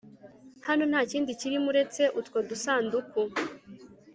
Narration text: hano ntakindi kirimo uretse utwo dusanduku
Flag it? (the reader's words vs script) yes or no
no